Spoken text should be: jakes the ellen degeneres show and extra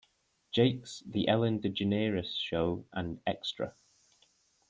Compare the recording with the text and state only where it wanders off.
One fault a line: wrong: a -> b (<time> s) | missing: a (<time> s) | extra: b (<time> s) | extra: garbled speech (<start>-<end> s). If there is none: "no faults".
no faults